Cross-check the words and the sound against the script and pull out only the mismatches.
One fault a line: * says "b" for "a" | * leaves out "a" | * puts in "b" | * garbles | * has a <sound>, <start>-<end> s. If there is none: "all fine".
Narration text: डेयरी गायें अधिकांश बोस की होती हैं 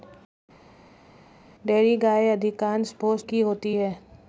all fine